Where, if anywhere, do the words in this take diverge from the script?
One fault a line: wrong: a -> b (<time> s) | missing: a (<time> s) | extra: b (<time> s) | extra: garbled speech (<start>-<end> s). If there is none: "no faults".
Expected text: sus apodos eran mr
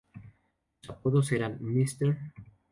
no faults